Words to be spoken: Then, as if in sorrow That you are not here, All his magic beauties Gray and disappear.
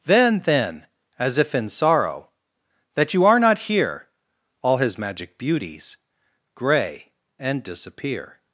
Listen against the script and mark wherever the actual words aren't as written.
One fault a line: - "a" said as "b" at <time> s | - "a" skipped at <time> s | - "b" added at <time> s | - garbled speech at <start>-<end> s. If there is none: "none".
- "then" added at 0.4 s